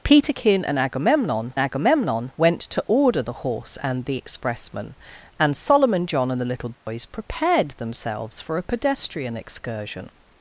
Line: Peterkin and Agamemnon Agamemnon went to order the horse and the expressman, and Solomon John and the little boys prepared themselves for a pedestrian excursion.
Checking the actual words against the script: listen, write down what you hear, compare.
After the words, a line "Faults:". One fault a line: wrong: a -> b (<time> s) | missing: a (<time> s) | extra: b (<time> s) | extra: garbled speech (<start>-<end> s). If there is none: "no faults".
Peterkin and Agamemnon Agamemnon went to order the horse and the expressman, and Solomon John and the little boys prepared themselves for a pedestrian excursion.
Faults:
no faults